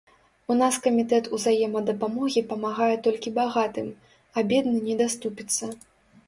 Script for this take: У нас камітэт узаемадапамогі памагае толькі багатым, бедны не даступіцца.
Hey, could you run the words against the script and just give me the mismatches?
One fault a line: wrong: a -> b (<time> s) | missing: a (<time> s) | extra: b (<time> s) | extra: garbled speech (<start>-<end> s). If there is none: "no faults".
extra: а (4.3 s)